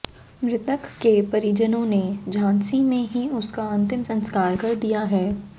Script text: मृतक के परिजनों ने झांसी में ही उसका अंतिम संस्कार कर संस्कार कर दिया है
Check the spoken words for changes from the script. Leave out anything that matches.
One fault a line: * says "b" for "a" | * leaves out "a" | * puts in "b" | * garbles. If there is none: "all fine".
* leaves out "संस्कार कर"